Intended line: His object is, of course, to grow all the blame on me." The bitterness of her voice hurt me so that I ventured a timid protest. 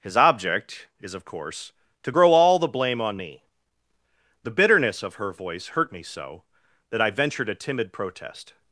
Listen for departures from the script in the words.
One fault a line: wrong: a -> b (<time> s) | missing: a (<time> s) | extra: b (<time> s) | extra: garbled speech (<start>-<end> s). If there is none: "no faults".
no faults